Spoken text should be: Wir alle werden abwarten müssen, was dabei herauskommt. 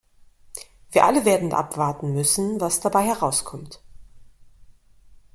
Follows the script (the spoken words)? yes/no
yes